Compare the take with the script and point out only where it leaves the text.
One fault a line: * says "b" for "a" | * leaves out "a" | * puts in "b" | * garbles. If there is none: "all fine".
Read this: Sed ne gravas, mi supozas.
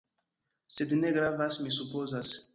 all fine